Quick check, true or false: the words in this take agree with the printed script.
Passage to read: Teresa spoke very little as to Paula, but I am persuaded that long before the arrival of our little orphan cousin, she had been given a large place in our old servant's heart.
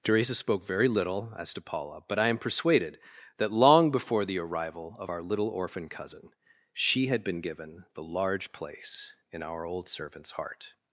false